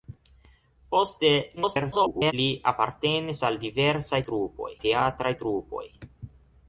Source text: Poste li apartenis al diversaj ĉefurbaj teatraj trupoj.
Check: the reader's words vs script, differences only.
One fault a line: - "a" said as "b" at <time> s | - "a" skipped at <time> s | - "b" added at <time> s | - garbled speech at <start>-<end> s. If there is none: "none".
- garbled speech at 1.6-2.3 s
- "ĉefurbaj" said as "trupoj" at 4.3 s